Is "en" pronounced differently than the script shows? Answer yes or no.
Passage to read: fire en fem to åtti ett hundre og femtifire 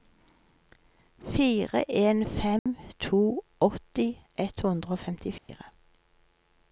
no